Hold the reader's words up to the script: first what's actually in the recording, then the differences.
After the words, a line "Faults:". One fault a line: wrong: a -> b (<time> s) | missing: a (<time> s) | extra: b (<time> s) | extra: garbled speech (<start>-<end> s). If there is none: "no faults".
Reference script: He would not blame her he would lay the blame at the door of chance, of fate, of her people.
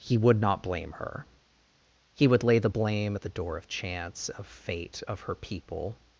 He would not blame her he would lay the blame at the door of chance, of fate, of her people.
Faults:
no faults